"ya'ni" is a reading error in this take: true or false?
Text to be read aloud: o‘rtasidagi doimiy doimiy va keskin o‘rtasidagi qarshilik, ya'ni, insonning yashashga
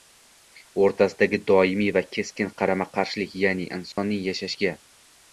false